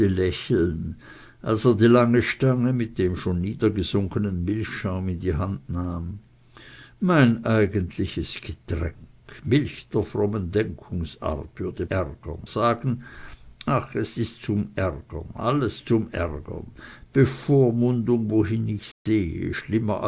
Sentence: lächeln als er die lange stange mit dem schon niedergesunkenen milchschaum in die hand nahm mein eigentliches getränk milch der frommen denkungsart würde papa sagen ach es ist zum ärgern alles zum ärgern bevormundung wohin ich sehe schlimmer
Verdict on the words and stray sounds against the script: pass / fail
fail